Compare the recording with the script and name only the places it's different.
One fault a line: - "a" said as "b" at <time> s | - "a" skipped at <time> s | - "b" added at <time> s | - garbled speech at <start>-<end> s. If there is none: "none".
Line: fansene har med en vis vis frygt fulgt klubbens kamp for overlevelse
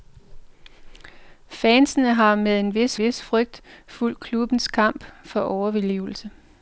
none